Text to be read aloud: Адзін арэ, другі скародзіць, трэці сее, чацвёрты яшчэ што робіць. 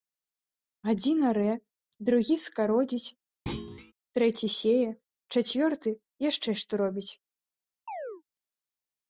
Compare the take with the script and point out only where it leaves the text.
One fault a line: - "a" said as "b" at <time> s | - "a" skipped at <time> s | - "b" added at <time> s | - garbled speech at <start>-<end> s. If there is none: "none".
none